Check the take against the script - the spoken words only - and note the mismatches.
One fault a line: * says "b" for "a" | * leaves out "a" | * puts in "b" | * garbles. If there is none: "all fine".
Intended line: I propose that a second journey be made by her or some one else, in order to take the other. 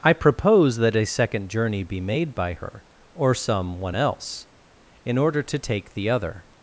all fine